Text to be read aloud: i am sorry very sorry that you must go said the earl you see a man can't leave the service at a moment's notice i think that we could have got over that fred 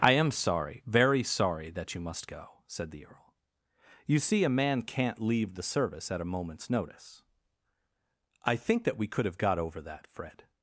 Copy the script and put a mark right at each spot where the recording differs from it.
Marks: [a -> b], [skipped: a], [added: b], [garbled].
i am sorry very sorry that you must go said the earl you see a man can't leave the service at a moment's notice i think that we could have got over that fred